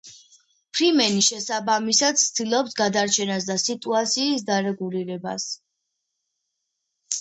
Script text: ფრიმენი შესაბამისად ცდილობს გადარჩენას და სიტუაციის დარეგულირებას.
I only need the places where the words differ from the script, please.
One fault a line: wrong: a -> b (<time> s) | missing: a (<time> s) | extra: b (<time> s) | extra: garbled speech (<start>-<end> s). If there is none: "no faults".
no faults